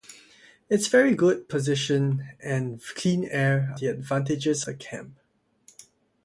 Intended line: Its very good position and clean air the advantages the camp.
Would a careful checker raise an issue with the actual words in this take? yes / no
no